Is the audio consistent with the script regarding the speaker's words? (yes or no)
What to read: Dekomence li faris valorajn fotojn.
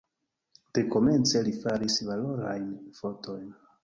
yes